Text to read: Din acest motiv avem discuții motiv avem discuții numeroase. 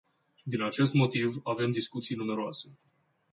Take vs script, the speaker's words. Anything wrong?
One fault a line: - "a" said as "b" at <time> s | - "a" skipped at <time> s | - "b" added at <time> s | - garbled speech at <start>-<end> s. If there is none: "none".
- "motiv avem discuții" skipped at 2.1 s